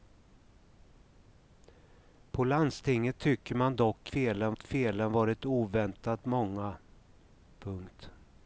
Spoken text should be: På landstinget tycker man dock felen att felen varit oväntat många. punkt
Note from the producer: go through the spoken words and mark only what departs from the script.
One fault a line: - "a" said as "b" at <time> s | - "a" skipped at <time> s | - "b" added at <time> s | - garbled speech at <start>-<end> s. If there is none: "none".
none